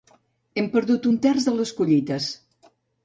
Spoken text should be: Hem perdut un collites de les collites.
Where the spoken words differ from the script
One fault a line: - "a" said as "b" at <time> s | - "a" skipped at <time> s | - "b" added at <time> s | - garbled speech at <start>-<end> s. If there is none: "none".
- "collites" said as "terç" at 1.3 s